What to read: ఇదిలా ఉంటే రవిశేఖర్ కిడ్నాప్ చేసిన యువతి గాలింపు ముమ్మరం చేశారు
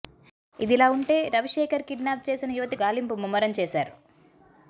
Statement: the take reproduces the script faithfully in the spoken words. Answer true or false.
true